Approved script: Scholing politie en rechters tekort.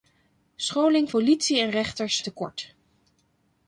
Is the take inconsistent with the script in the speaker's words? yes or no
no